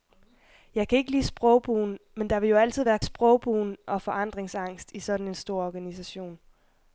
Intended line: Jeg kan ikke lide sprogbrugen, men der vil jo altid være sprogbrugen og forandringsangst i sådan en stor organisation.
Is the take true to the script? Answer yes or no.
yes